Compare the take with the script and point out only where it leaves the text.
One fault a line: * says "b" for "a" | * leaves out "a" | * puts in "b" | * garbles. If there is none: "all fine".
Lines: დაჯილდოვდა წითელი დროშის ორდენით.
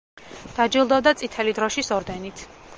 all fine